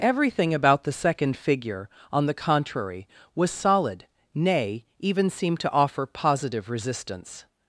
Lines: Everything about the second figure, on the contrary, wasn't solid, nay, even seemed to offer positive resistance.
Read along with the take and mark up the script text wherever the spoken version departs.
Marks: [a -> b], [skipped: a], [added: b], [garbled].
Everything about the second figure, on the contrary, [wasn't -> was] solid, nay, even seemed to offer positive resistance.